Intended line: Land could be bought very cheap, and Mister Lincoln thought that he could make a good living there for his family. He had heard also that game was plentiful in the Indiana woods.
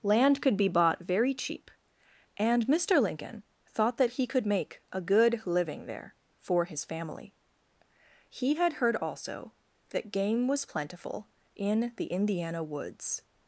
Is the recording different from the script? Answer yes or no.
no